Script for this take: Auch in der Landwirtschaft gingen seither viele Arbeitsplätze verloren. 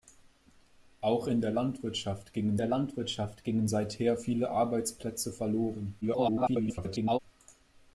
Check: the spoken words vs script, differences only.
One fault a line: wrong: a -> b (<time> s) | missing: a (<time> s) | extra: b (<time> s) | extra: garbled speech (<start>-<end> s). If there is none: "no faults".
extra: der Landwirtschaft gingen (2.6 s)
extra: garbled speech (6.0-7.2 s)